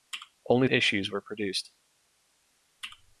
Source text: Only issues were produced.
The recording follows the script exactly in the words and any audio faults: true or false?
true